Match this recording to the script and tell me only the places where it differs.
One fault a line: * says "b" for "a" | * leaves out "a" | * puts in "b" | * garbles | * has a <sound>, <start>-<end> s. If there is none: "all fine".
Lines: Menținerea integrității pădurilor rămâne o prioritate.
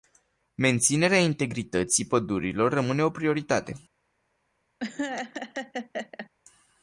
* has a laugh, 4.8-6.3 s